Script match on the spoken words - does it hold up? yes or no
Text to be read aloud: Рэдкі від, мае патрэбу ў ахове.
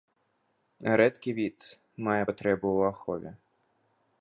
yes